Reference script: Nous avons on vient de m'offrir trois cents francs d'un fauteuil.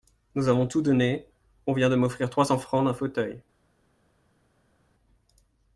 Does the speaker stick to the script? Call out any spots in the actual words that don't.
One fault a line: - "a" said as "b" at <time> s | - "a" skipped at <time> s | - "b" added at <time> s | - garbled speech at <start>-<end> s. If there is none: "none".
- "tout donné" added at 0.6 s